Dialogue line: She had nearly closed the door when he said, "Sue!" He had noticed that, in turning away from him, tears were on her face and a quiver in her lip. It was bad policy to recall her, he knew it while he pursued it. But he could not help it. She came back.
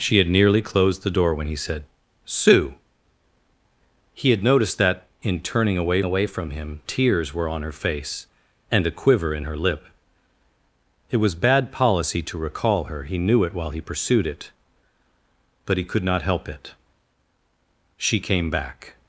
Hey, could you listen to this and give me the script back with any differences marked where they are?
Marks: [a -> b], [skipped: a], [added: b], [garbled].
She had nearly closed the door when he said, "Sue!" He had noticed that, in turning away [added: away] from him, tears were on her face and a quiver in her lip. It was bad policy to recall her, he knew it while he pursued it. But he could not help it. She came back.